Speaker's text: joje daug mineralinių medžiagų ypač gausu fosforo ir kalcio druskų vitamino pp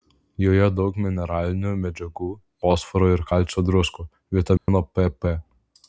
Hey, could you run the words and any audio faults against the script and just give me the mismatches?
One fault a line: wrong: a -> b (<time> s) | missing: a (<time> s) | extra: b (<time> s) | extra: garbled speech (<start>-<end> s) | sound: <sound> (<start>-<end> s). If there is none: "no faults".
missing: ypač gausu (2.3 s)
sound: dropout (4.6-4.7 s)